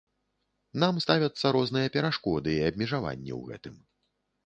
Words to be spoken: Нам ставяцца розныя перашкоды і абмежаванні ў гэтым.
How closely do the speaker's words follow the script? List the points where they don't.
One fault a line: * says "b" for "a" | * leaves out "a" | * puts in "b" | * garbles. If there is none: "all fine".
all fine